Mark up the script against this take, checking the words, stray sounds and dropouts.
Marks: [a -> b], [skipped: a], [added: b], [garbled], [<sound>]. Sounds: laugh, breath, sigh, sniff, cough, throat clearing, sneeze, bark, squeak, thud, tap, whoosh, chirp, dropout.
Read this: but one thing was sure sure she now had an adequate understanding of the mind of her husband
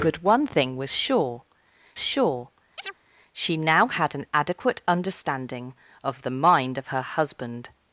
but one thing was sure sure [chirp] she now had an adequate understanding of the mind of her husband